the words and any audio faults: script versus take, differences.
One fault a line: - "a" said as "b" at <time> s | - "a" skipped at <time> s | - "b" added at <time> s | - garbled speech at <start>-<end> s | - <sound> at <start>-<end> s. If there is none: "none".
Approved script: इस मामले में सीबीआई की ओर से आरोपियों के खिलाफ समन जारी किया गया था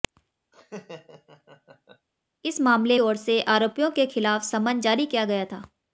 - laugh at 0.5-2.1 s
- "में सीबीआई की" skipped at 3.0 s